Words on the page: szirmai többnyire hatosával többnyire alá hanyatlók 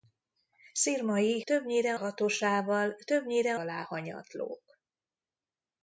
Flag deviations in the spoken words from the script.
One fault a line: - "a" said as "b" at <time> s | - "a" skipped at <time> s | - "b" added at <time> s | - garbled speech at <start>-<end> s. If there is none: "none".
none